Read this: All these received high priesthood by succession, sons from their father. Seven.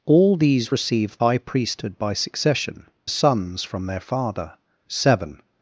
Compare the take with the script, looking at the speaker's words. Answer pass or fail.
pass